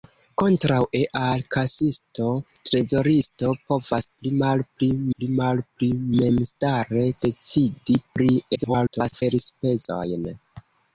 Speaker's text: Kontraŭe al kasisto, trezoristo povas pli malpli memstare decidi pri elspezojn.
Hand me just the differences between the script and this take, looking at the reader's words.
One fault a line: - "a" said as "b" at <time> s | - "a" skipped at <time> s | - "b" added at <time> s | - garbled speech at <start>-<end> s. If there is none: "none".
- "pli malpli" added at 5.1 s
- garbled speech at 8.5-9.2 s